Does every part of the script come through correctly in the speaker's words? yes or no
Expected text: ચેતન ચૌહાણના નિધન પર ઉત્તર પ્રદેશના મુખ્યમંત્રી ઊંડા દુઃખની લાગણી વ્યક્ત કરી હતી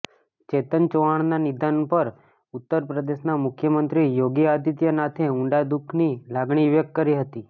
no